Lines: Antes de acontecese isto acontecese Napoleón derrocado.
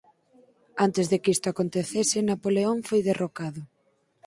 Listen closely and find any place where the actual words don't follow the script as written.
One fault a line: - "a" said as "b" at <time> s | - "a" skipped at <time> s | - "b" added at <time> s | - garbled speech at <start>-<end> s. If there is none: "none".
- "acontecese" said as "que" at 1.2 s
- "foi" added at 2.9 s